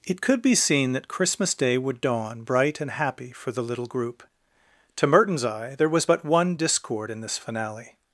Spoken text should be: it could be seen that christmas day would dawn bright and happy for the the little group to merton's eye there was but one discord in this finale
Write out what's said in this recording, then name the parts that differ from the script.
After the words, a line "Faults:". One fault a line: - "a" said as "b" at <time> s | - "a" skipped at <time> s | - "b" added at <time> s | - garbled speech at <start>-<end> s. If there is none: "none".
it could be seen that christmas day would dawn bright and happy for the little group to merton's eye there was but one discord in this finale
Faults:
- "the" skipped at 3.6 s